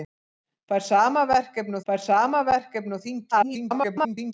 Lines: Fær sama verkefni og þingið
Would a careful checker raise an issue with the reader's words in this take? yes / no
yes